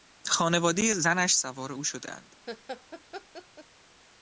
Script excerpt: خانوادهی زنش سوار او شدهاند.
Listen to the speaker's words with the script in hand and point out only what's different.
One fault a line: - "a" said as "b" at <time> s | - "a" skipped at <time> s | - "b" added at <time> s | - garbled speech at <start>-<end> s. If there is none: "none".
none